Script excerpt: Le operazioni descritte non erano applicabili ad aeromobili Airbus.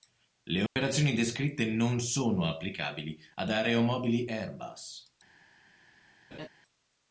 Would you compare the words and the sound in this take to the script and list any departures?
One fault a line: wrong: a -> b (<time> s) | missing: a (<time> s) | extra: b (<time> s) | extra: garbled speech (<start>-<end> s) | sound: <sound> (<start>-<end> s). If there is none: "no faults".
sound: dropout (0.7-0.8 s)
wrong: erano -> sono (2.0 s)
sound: laugh (6.3-6.5 s)